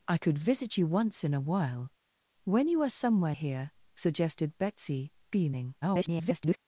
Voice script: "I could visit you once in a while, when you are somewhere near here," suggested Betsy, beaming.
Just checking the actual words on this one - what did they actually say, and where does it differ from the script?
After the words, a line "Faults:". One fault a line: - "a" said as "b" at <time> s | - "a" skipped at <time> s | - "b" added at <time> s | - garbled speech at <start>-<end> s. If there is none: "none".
"I could visit you once in a while, when you are somewhere here," suggested Betsy, beaming. [garbled]
Faults:
- "near" skipped at 3.4 s
- garbled speech at 5.8-6.6 s